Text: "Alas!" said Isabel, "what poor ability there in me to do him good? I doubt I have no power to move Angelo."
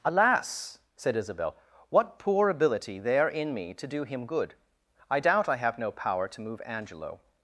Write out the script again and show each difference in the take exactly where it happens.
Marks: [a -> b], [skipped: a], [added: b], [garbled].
"Alas!" said Isabel, "what poor ability there in me to do him good? I doubt I have no power to move Angelo."